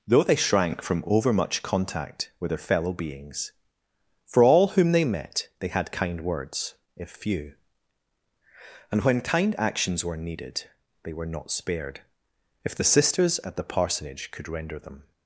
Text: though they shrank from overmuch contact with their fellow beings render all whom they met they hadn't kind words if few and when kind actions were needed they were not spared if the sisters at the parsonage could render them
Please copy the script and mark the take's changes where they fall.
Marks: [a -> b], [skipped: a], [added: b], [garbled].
though they shrank from overmuch contact with their fellow beings [render -> for] all whom they met they [hadn't -> had] kind words if few and when kind actions were needed they were not spared if the sisters at the parsonage could render them